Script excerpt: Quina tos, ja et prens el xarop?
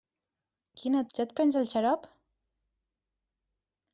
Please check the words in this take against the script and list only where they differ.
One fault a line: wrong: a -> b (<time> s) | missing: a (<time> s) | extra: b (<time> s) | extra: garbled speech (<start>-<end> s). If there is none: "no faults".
missing: tos (1.0 s)